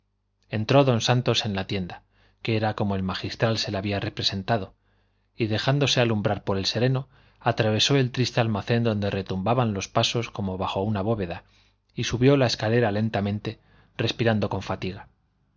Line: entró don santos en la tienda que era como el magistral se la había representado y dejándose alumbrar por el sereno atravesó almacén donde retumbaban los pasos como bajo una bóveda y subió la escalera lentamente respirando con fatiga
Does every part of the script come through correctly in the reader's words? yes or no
no